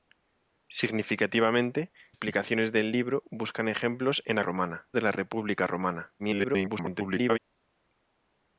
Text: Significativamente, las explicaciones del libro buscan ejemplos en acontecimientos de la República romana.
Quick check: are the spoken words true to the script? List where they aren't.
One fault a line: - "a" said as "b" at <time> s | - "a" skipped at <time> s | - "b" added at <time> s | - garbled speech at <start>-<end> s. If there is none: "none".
- "las" skipped at 1.9 s
- "acontecimientos" said as "romana" at 4.4 s
- garbled speech at 6.2-7.4 s